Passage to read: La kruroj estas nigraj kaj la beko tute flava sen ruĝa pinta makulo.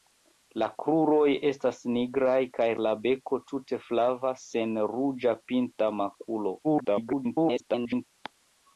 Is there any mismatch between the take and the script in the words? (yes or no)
yes